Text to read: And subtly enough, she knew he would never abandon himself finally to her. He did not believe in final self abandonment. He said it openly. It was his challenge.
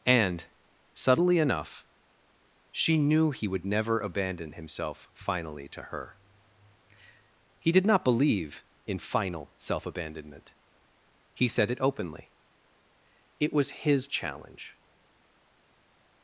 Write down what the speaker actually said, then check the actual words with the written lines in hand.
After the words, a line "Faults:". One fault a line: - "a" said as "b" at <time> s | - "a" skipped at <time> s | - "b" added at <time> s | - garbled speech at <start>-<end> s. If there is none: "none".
And subtly enough, she knew he would never abandon himself finally to her. He did not believe in final self abandonment. He said it openly. It was his challenge.
Faults:
none